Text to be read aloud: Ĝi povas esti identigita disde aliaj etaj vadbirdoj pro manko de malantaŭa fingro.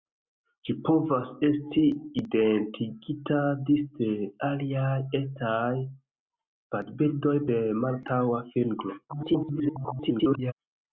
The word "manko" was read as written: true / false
false